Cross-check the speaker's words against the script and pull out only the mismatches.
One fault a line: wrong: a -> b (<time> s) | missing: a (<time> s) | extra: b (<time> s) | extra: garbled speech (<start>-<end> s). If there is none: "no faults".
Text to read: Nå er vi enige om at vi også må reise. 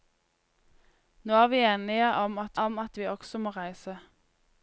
extra: om at (2.6 s)